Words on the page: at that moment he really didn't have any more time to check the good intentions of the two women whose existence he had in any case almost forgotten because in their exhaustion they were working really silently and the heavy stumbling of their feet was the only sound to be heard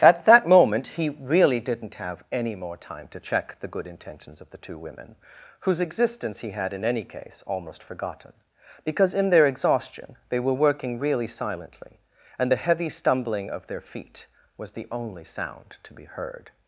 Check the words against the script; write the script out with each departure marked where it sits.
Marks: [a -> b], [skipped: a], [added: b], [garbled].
at that moment he really didn't have any more time to check the good intentions of the two women whose existence he had in any case almost forgotten because in their exhaustion they were working really silently and the heavy stumbling of their feet was the only sound to be heard